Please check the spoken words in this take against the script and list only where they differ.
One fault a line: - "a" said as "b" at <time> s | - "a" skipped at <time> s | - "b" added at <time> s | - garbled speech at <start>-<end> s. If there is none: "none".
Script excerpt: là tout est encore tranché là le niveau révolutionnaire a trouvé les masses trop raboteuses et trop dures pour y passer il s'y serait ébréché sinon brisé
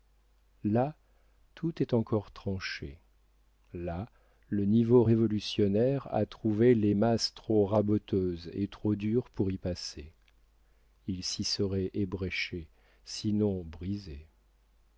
none